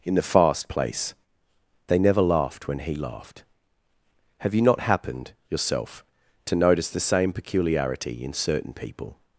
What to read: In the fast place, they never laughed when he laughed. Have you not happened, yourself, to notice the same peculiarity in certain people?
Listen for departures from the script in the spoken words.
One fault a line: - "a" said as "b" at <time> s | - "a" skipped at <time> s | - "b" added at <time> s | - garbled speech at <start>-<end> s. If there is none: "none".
none